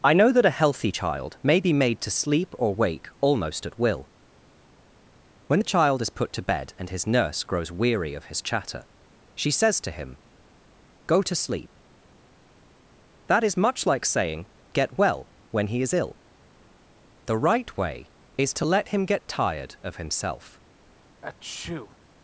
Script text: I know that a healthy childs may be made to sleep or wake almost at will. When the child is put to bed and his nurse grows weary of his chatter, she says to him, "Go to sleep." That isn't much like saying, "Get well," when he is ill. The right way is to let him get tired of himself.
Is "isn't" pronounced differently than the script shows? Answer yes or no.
yes